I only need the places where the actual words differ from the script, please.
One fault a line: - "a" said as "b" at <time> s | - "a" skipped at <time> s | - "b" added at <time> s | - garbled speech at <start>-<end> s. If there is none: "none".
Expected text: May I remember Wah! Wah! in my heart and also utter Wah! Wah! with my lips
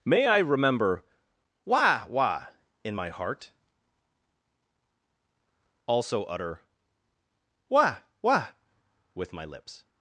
- "and" skipped at 3.5 s